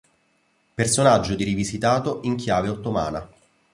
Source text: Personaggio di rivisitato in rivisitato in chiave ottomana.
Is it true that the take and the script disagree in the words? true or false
true